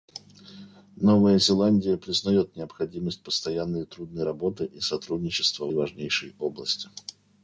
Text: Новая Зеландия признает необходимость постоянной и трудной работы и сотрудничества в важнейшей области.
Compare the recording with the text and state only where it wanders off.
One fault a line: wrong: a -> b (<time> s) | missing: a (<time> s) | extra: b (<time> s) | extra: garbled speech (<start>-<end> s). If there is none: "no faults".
no faults